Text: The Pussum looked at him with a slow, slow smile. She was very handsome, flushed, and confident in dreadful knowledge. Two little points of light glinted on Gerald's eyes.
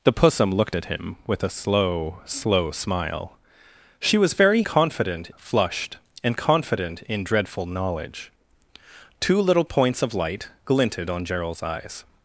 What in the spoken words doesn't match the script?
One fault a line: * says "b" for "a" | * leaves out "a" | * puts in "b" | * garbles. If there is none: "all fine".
* says "confident" for "handsome"